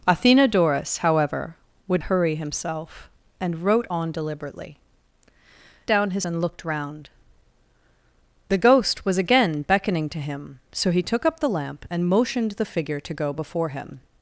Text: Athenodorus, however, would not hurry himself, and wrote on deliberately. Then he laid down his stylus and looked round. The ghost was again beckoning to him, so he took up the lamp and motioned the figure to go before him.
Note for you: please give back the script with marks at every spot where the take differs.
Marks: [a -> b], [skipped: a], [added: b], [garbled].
Athenodorus, however, would [skipped: not] hurry himself, and wrote on deliberately. [skipped: Then he laid] down his [skipped: stylus] and looked round. The ghost was again beckoning to him, so he took up the lamp and motioned the figure to go before him.